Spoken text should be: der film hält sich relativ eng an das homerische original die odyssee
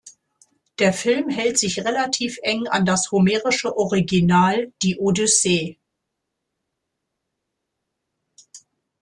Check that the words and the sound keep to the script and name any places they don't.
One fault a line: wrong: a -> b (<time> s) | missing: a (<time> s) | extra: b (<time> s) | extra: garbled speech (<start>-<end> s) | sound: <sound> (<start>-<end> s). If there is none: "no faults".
no faults